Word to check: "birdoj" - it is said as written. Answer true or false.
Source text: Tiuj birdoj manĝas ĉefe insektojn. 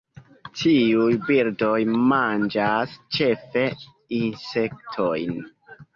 true